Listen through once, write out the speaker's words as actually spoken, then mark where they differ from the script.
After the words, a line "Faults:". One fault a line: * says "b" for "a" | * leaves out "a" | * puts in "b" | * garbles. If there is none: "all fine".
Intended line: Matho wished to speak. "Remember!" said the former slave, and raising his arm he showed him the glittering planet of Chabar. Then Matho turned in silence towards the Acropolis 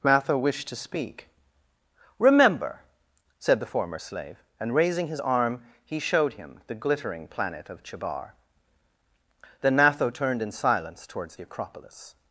Matho wished to speak. "Remember!" said the former slave, and raising his arm he showed him the glittering planet of Chabar. Then Matho turned in silence towards the Acropolis
Faults:
all fine